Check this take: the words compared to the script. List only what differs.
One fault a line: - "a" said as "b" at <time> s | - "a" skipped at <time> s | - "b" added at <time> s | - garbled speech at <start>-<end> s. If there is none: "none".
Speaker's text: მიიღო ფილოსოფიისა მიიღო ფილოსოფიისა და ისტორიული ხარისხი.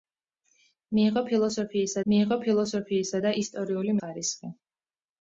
none